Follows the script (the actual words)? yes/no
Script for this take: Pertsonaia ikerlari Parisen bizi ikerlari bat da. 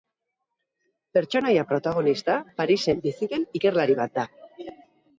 no